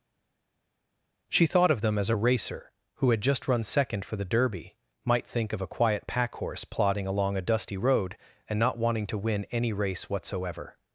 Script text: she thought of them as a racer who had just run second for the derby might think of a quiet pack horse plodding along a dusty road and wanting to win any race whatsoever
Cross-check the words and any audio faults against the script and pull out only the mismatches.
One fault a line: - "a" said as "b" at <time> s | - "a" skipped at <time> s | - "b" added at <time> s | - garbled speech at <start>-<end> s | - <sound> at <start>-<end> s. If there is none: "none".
- "not" added at 8.6 s